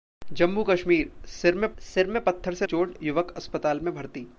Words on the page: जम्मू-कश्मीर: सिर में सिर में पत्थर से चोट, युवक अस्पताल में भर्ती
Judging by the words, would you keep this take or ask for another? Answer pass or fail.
pass